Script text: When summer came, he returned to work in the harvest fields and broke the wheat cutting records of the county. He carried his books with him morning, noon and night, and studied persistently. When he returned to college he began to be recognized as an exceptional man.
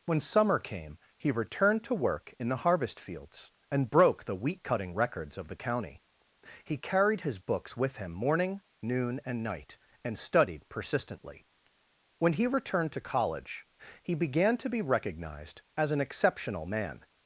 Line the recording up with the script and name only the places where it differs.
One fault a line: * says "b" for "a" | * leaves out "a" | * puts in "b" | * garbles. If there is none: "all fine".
all fine